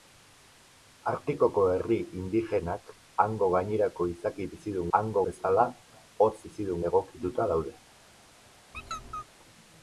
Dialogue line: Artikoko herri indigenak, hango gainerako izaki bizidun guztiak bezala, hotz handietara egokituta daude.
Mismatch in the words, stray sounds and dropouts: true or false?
true